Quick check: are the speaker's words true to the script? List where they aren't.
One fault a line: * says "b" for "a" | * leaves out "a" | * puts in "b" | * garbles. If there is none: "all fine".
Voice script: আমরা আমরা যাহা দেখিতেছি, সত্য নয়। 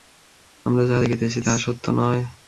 * leaves out "আমরা"
* puts in "তাহা"